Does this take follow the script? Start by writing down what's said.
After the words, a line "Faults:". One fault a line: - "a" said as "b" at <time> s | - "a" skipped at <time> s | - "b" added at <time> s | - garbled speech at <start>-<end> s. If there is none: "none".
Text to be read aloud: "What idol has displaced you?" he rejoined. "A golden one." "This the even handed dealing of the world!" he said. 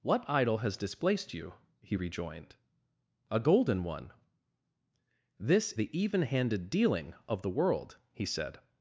"What idol has displaced you?" he rejoined. "A golden one." "This the even handed dealing of the world!" he said.
Faults:
none